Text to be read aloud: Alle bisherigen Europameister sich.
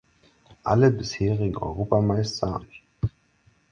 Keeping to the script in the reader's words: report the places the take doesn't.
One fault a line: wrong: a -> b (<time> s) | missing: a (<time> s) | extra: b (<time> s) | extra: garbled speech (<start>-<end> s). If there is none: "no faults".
no faults